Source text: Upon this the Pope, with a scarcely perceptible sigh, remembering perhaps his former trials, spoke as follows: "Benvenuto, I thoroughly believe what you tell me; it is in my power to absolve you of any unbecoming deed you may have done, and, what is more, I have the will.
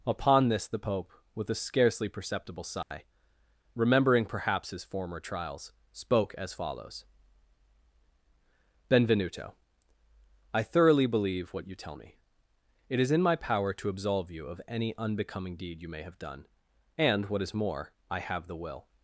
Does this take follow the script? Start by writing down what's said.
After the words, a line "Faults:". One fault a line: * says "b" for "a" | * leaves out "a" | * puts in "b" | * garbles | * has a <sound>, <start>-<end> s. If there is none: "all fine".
Upon this the Pope, with a scarcely perceptible sigh, remembering perhaps his former trials, spoke as follows: "Benvenuto, I thoroughly believe what you tell me; it is in my power to absolve you of any unbecoming deed you may have done, and, what is more, I have the will.
Faults:
* has a dropout, 2.8-2.9 s